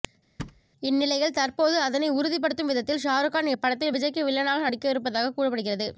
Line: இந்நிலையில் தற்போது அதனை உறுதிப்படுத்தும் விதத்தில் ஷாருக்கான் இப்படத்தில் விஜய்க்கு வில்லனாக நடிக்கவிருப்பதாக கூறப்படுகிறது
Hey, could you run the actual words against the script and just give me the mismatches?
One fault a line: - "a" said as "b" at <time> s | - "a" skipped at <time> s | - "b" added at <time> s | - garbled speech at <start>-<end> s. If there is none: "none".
none